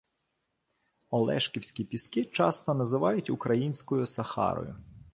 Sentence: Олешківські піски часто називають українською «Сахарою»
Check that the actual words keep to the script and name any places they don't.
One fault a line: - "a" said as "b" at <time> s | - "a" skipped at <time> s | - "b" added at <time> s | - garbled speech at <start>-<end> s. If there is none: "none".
none